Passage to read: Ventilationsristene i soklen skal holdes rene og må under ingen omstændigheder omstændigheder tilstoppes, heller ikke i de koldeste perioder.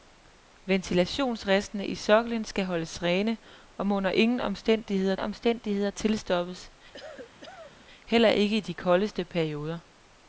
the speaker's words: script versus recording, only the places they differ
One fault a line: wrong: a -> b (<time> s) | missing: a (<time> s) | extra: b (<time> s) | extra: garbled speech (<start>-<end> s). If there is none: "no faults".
no faults